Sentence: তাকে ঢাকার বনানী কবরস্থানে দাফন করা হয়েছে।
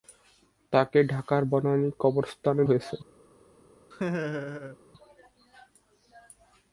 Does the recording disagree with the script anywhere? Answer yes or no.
yes